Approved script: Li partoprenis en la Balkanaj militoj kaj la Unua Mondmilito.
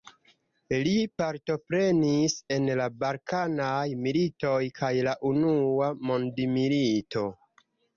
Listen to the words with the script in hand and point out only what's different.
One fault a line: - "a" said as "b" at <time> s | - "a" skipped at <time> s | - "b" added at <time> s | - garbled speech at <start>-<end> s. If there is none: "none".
none